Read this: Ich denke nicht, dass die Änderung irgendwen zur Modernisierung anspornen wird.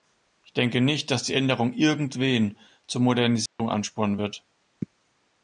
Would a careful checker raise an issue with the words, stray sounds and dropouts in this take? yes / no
yes